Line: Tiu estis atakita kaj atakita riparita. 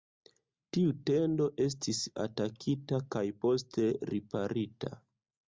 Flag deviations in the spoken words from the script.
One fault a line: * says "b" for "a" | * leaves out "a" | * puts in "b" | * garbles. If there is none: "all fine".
* puts in "tendo"
* says "poste" for "atakita"